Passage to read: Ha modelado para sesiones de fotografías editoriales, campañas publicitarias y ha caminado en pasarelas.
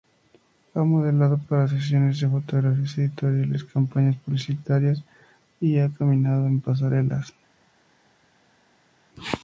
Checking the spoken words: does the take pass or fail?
pass